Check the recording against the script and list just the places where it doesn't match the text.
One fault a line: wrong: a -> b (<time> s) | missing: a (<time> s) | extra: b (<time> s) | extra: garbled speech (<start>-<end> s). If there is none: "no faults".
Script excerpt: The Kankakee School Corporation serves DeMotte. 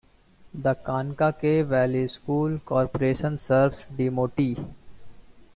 extra: Valley (1.6 s)